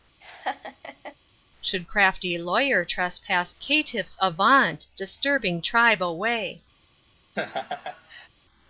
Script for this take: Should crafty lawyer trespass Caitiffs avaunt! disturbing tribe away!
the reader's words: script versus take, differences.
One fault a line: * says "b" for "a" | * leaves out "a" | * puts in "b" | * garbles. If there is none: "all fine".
all fine